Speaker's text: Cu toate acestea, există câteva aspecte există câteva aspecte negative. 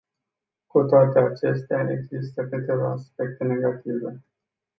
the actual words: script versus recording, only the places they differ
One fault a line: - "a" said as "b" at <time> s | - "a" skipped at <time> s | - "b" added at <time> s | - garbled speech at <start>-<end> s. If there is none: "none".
- "există câteva aspecte" skipped at 3.4 s